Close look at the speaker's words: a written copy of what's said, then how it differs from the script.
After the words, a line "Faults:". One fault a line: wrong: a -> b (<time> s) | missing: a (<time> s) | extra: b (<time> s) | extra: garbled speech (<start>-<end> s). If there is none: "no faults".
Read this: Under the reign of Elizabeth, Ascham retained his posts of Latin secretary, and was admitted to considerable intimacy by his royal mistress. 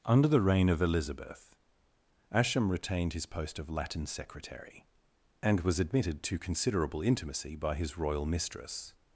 Under the reign of Elizabeth, Ascham retained his post of Latin secretary, and was admitted to considerable intimacy by his royal mistress.
Faults:
wrong: posts -> post (3.3 s)